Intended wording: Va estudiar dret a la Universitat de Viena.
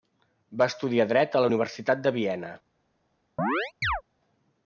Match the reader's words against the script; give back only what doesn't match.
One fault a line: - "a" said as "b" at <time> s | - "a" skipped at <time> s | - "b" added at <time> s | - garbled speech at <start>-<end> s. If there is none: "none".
none